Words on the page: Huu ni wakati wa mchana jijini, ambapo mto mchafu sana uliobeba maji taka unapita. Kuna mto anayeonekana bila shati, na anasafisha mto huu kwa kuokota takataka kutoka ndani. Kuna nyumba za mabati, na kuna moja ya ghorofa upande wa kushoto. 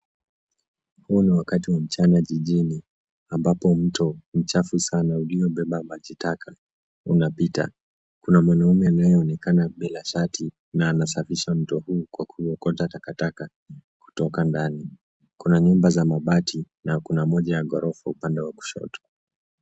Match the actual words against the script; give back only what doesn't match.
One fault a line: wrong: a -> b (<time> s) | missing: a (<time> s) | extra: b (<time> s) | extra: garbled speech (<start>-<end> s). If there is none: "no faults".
wrong: mto -> mwanaume (8.4 s)